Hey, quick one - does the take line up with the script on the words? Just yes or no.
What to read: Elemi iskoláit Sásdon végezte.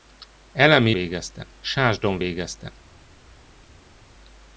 no